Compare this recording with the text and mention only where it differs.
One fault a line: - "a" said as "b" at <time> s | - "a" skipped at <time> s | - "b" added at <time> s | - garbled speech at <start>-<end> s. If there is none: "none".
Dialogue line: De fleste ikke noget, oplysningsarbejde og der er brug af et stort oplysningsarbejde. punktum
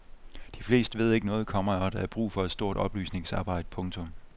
- "ved" added at 1.0 s
- "oplysningsarbejde" said as "komma" at 1.5 s
- "af" said as "for" at 2.3 s